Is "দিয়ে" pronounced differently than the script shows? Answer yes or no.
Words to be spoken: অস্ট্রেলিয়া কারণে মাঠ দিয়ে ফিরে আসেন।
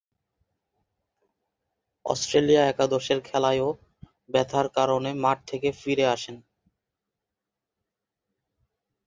yes